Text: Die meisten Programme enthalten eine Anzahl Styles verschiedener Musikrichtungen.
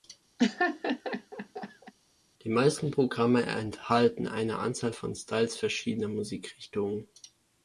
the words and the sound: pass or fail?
fail